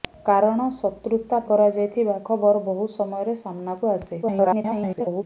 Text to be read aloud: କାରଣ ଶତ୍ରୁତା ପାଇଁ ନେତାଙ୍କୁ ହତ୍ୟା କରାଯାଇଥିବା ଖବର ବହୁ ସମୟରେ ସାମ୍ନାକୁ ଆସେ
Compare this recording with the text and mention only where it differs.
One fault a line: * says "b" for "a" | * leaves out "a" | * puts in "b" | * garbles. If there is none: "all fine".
* leaves out "ପାଇଁ ନେତାଙ୍କୁ ହତ୍ୟା"
* garbles